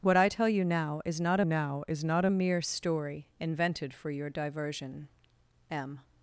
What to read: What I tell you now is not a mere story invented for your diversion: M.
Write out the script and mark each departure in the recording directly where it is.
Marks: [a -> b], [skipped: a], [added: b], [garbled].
What I tell you now is not [added: now is not] a mere story invented for your diversion: M.